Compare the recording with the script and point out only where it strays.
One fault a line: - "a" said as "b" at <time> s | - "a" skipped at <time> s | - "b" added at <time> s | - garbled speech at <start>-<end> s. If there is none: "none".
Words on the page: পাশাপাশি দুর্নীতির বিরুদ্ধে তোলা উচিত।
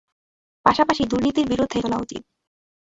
none